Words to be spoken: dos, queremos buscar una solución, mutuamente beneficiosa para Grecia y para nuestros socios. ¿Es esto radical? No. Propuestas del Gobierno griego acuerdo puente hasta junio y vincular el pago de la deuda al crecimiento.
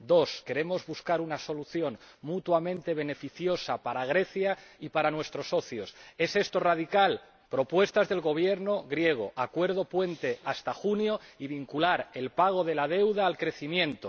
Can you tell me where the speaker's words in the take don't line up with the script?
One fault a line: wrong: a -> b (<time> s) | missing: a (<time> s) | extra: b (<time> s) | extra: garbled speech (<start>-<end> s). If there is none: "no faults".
missing: No (7.2 s)